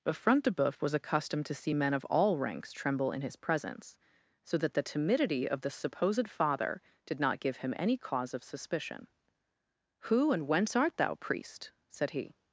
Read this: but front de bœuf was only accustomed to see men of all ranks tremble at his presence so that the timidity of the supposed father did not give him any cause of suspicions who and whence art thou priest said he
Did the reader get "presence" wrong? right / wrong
right